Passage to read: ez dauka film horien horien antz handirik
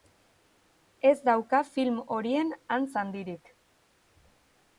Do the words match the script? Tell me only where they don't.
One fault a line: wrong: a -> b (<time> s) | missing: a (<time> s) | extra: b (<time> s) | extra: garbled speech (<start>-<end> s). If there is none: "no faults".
missing: horien (2.5 s)